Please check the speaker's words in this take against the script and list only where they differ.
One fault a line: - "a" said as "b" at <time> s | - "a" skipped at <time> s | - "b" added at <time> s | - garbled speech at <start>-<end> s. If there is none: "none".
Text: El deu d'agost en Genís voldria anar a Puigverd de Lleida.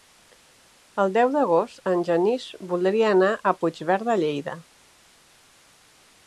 none